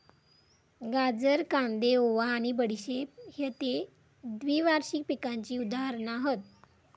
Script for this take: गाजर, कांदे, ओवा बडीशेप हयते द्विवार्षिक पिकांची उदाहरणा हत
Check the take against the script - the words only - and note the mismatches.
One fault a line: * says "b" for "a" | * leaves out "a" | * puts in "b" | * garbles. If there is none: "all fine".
* puts in "आणि"